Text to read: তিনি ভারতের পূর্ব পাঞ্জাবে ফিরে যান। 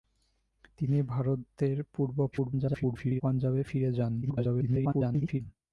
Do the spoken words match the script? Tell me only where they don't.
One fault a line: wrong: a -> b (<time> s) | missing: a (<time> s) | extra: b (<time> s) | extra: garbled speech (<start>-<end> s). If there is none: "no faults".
extra: garbled speech (2.3-3.2 s)
extra: garbled speech (4.2-5.4 s)